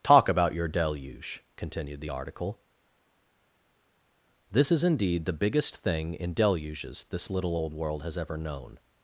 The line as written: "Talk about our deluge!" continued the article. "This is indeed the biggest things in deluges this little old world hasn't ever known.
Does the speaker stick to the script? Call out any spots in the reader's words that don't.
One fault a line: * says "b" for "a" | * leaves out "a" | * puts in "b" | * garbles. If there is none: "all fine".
* says "your" for "our"
* says "thing" for "things"
* says "has" for "hasn't"